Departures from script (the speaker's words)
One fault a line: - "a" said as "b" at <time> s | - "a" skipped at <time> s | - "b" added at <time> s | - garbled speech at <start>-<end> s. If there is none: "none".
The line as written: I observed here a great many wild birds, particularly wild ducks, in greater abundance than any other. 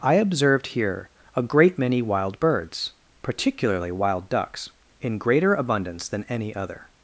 none